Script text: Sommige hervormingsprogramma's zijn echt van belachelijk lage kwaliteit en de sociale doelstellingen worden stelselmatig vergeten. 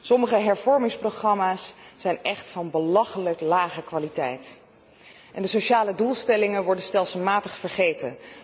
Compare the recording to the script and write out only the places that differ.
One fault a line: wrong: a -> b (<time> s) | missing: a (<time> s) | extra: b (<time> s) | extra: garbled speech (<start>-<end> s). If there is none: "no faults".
no faults